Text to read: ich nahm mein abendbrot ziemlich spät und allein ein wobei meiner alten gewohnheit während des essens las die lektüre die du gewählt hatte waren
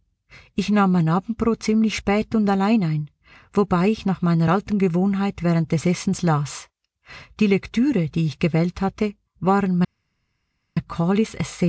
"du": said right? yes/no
no